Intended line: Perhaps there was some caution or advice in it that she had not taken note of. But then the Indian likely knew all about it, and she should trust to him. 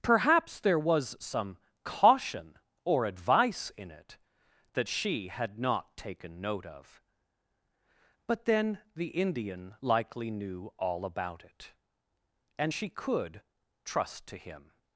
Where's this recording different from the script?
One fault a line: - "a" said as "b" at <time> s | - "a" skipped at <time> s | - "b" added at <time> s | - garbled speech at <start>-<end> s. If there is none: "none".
- "should" said as "could" at 12.9 s